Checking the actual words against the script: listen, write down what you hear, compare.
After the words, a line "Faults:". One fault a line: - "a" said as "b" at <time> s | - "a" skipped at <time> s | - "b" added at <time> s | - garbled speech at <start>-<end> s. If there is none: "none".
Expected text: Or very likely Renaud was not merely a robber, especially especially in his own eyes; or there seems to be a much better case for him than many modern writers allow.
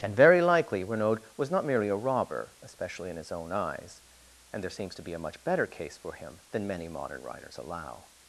And very likely Renaud was not merely a robber, especially in his own eyes; and there seems to be a much better case for him than many modern writers allow.
Faults:
- "Or" said as "And" at 0.0 s
- "especially" skipped at 3.1 s
- "or" said as "and" at 4.5 s